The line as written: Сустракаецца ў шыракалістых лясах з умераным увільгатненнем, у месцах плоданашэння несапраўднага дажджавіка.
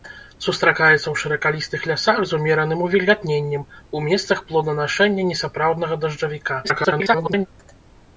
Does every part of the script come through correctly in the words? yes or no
no